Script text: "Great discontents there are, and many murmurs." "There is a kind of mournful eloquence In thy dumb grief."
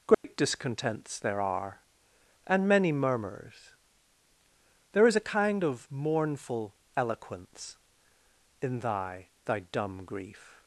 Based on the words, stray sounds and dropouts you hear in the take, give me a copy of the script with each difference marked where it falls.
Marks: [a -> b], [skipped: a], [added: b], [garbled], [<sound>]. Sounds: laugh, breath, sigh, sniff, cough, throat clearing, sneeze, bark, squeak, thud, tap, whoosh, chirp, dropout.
"Great [dropout] discontents there are, and many murmurs." "There is a kind of mournful eloquence In thy [added: thy] dumb grief."